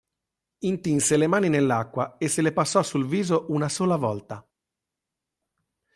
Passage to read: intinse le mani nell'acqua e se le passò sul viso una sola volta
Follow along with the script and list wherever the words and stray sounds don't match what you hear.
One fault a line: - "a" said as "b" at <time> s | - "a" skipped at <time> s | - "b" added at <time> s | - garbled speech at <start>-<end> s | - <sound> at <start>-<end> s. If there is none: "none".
none